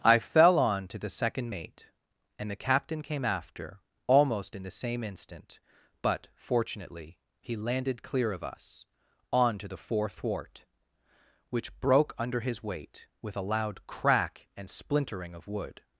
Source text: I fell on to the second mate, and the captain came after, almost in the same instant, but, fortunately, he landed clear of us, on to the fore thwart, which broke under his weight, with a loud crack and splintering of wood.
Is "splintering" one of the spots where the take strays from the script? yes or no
no